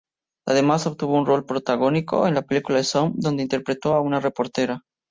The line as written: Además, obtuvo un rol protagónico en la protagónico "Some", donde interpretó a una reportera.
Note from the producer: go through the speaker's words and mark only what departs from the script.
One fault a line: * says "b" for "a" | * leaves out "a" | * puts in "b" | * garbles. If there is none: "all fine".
* says "película" for "protagónico"